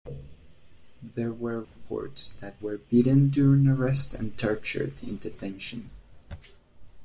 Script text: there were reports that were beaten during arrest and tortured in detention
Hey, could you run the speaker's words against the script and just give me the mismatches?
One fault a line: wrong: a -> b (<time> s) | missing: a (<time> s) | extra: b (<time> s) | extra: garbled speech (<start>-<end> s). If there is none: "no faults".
no faults